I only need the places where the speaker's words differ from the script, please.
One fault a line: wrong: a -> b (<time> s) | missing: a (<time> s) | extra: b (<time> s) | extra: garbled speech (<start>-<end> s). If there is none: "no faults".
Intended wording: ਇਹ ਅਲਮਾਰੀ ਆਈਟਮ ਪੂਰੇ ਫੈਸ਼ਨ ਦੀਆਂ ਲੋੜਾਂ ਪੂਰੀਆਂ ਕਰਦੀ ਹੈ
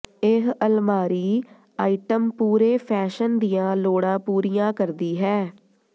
no faults